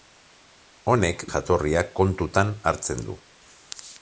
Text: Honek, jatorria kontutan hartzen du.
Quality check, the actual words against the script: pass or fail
pass